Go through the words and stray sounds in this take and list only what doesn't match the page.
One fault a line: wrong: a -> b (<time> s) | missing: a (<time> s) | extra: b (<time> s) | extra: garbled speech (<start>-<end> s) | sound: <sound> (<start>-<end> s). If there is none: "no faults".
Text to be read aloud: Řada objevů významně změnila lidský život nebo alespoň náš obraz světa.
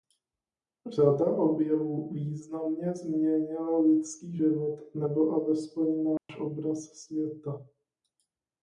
sound: dropout (6.2-6.3 s)